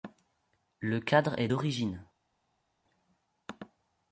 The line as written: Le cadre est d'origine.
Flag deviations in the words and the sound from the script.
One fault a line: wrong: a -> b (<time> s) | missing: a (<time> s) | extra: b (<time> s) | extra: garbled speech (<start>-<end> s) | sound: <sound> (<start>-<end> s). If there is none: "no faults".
no faults